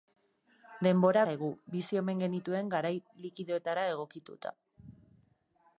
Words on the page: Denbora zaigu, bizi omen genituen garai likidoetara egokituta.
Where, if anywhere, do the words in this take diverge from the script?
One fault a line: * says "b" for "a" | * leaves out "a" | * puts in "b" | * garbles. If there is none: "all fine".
all fine